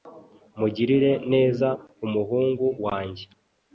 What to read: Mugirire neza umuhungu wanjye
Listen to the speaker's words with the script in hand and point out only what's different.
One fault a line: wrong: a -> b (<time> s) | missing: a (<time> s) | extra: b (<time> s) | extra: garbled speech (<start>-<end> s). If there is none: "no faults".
no faults